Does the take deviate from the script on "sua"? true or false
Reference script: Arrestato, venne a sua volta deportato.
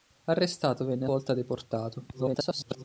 true